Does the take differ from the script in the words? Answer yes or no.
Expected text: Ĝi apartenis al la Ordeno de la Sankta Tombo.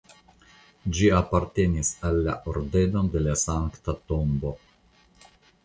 no